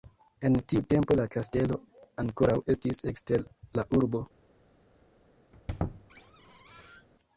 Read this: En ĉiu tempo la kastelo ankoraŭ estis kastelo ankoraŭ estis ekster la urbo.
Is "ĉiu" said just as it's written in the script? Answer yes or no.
no